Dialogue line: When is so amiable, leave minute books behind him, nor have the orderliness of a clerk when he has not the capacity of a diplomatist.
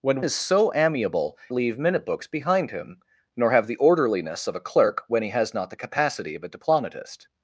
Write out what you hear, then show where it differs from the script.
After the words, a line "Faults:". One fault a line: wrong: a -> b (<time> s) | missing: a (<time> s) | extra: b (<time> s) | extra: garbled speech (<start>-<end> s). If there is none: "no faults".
When is so amiable, leave minute books behind him, nor have the orderliness of a clerk when he has not the capacity of a diplomatist.
Faults:
no faults